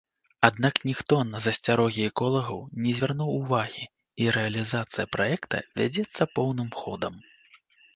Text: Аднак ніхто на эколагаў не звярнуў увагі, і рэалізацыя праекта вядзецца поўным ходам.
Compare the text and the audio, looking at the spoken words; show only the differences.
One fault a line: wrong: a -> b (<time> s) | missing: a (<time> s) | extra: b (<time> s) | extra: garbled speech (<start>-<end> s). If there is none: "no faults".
extra: засцярогі (1.4 s)